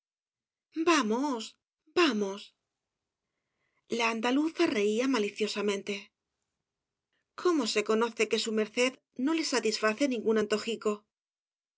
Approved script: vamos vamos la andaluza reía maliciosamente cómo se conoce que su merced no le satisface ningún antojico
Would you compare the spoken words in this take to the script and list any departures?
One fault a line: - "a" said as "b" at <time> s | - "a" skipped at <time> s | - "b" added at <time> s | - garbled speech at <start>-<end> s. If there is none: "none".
none